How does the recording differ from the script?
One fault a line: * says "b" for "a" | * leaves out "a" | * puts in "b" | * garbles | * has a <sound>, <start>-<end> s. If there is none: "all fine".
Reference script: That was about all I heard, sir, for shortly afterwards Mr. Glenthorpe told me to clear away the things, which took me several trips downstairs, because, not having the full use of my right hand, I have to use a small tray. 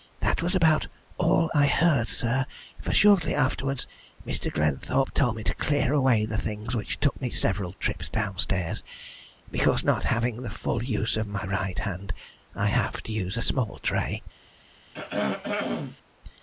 * has a throat clearing, 14.9-16.0 s